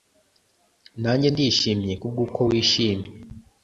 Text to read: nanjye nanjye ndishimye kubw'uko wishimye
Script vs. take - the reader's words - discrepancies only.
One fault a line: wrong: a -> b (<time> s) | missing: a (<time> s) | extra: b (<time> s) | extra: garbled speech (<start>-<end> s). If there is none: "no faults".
missing: nanjye (1.3 s)